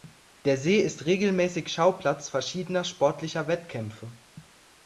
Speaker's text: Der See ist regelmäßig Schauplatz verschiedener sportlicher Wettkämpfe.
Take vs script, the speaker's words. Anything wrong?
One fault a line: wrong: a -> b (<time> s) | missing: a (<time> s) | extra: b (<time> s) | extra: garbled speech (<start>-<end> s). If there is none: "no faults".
no faults